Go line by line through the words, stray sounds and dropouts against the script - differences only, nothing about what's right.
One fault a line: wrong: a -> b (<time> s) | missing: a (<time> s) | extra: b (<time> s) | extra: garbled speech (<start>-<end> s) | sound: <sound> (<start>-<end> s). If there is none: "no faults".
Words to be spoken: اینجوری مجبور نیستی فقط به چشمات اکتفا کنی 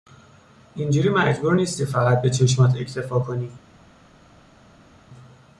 no faults